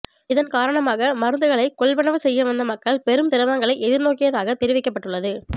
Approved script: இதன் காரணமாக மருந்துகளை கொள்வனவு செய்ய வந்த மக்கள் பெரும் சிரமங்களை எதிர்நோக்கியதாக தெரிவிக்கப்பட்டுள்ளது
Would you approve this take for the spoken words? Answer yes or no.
yes